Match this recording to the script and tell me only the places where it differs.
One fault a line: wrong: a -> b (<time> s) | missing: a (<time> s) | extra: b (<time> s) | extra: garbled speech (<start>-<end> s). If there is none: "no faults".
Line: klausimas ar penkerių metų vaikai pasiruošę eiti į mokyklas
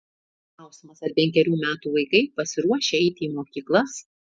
no faults